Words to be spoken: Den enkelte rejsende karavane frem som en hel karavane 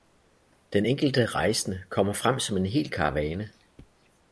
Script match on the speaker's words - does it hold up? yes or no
no